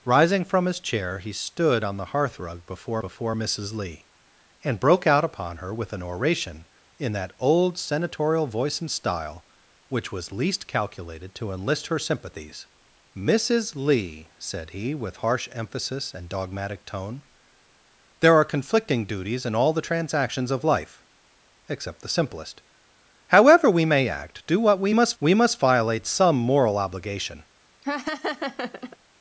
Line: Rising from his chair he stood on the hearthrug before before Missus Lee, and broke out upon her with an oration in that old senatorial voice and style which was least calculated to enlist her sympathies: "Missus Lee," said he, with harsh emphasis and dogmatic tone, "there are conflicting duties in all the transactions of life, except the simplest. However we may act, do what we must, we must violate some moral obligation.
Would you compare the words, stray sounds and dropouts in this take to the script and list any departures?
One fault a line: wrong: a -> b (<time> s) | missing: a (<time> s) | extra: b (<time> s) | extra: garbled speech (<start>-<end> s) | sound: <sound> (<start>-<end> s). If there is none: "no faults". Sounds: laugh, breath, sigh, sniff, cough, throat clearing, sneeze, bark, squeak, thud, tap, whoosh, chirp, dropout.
sound: laugh (27.8-29.0 s)